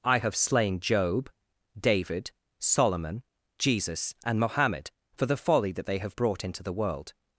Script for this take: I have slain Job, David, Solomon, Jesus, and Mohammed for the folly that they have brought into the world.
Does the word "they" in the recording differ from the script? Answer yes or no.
no